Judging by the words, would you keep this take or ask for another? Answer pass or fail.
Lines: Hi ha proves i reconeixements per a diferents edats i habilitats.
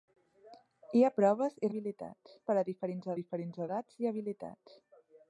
fail